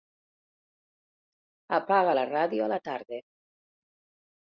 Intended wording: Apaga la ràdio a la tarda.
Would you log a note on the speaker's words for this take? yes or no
no